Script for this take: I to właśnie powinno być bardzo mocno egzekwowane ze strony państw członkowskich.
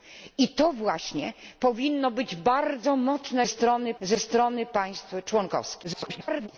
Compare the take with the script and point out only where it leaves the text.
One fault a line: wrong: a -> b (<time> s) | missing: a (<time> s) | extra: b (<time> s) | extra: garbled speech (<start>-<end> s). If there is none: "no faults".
wrong: egzekwowane -> strony (3.5 s)
extra: garbled speech (5.8-6.5 s)